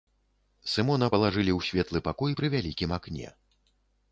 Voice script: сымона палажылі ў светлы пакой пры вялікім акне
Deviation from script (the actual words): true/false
false